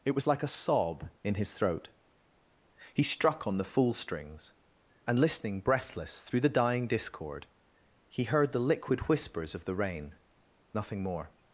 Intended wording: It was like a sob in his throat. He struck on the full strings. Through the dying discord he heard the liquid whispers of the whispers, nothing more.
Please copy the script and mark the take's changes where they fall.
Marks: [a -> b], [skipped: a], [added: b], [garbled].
It was like a sob in his throat. He struck on the full strings. [added: And listening breathless] Through the dying discord he heard the liquid whispers of the [whispers, -> rain] nothing more.